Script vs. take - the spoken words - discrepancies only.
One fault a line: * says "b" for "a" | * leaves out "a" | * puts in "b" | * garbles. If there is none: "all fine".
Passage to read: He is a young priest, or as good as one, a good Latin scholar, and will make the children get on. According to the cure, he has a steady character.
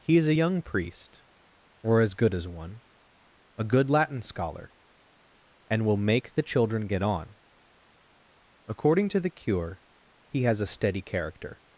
all fine